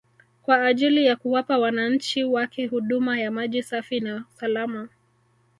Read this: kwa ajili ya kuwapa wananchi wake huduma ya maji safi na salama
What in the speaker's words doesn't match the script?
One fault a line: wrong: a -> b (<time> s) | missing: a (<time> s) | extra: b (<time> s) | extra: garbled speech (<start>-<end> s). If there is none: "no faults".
no faults